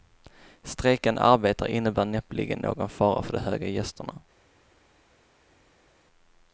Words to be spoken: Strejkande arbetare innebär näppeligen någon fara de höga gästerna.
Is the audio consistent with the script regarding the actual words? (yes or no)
no